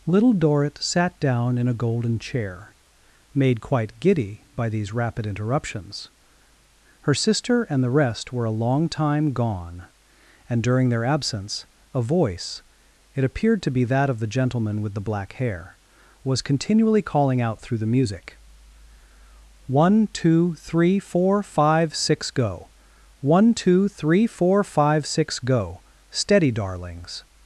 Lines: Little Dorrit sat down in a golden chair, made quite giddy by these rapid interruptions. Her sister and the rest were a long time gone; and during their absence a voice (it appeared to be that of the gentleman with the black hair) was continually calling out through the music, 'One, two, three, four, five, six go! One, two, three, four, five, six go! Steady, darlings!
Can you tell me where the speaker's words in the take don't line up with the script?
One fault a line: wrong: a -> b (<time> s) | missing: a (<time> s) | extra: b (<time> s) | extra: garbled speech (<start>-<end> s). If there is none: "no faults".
no faults